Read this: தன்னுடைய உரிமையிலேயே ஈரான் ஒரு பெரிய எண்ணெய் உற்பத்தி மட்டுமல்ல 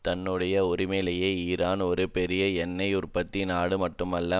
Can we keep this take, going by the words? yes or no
no